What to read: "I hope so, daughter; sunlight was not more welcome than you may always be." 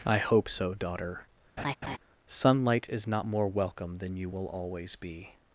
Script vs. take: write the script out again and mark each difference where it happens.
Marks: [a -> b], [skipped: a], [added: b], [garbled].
"I hope so, daughter; sunlight [was -> is] not more welcome than you [may -> will] always be."